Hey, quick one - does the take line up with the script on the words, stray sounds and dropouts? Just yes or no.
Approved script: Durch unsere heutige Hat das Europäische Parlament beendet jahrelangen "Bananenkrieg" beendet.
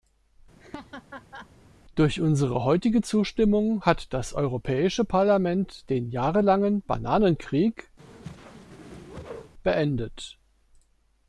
no